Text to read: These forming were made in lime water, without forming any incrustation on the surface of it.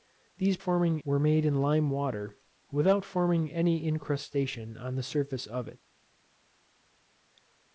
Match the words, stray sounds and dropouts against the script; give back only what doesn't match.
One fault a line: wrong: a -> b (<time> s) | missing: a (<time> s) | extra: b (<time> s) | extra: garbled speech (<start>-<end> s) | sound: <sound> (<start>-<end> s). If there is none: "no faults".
no faults